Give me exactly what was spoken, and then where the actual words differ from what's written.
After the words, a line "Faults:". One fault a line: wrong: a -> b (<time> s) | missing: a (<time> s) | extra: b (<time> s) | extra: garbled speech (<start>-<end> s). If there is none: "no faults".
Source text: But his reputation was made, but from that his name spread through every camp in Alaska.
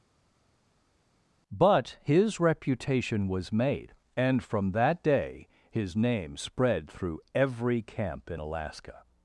But his reputation was made, and from that day his name spread through every camp in Alaska.
Faults:
wrong: but -> and (4.2 s)
extra: day (5.0 s)